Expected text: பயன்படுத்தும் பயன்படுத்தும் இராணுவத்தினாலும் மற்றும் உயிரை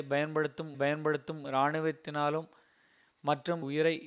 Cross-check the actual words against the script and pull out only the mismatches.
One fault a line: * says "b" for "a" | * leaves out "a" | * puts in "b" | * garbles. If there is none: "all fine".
all fine